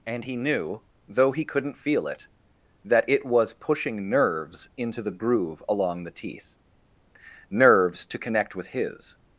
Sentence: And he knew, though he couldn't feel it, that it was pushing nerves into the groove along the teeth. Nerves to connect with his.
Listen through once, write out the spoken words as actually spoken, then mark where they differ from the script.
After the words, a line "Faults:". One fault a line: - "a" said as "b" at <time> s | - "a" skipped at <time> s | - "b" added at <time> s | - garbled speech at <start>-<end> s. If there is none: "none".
And he knew, though he couldn't feel it, that it was pushing nerves into the groove along the teeth. Nerves to connect with his.
Faults:
none